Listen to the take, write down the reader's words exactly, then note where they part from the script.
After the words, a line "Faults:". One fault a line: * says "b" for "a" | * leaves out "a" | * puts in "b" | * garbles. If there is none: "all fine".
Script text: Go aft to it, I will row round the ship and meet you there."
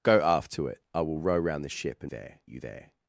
Go aft to it, I will row round the ship and there you there."
Faults:
* says "there" for "meet"